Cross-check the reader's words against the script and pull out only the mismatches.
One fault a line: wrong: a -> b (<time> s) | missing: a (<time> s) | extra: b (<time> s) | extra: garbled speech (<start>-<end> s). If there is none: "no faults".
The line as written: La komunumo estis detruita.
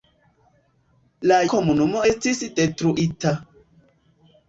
no faults